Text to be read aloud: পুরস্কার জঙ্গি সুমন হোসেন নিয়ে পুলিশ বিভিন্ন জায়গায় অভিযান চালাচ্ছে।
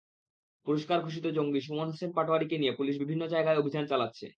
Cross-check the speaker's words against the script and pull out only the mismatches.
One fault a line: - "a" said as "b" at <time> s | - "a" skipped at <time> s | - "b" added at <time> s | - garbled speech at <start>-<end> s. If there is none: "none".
- "ঘোষিত" added at 1.0 s
- "পাটোয়ারিকে" added at 2.1 s